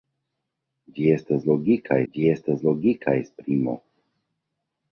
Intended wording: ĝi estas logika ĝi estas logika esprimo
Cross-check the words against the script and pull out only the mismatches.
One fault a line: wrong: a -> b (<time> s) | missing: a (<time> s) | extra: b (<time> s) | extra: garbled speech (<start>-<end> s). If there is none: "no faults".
no faults